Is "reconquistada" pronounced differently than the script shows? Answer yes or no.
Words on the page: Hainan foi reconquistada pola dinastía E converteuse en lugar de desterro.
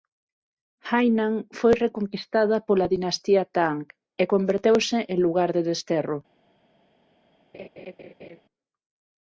no